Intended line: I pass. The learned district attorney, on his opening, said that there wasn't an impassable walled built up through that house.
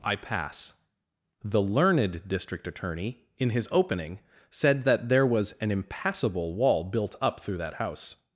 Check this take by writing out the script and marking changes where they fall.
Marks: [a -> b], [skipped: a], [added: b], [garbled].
I pass. The learned district attorney, [on -> in] his opening, said that there [wasn't -> was] an impassable [walled -> wall] built up through that house.